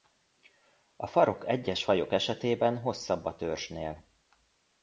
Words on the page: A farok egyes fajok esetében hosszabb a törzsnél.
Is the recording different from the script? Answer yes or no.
no